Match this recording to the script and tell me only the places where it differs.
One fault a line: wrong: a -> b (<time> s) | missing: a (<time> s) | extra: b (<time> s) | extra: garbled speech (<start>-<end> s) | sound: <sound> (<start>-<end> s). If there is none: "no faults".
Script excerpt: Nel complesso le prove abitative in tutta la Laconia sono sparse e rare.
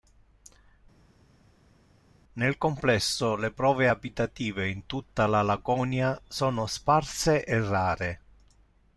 no faults